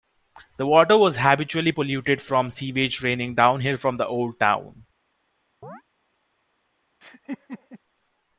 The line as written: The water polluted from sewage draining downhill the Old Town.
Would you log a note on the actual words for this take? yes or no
yes